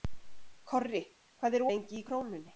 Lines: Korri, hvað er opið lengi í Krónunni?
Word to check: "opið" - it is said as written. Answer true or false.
false